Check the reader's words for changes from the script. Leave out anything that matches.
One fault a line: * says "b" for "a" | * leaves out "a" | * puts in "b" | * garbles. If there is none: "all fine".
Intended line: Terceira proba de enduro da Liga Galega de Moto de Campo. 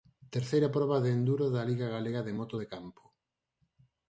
all fine